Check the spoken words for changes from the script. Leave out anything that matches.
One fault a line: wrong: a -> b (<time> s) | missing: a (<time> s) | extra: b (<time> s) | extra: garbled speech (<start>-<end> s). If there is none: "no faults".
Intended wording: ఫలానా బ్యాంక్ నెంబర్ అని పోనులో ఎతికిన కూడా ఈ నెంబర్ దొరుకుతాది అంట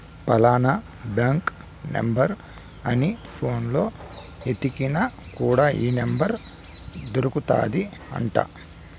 no faults